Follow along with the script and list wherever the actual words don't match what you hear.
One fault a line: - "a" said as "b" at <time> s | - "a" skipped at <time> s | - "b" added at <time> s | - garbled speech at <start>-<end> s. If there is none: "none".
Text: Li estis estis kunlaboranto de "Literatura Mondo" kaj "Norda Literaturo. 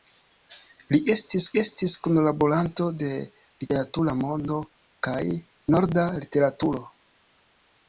none